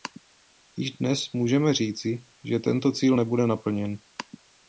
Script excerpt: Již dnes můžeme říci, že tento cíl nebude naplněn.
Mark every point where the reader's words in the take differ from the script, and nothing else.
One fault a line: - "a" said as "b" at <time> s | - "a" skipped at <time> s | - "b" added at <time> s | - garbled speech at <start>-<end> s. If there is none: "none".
none